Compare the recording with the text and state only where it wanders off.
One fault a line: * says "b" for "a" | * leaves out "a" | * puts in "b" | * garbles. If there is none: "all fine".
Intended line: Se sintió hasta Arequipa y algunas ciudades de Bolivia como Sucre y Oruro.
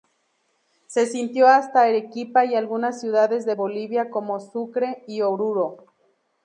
all fine